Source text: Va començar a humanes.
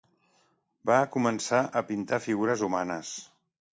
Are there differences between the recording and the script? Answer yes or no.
yes